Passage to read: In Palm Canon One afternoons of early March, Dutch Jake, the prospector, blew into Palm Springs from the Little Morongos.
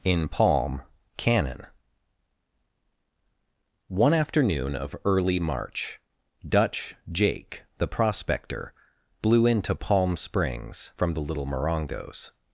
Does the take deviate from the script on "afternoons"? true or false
true